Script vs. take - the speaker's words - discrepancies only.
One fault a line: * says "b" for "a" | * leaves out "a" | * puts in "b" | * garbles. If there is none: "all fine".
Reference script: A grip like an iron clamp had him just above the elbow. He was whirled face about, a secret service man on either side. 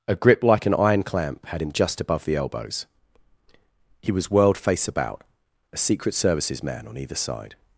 * says "elbows" for "elbow"
* says "services" for "service"